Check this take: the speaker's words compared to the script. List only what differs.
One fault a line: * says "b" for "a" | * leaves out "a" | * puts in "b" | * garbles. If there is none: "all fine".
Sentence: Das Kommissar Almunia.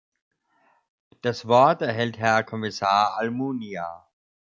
* puts in "Wort erhält Herr"